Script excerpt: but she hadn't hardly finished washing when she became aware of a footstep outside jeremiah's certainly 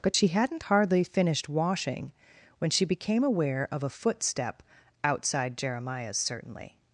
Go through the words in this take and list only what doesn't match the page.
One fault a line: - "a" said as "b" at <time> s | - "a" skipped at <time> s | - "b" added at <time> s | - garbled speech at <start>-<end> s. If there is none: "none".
none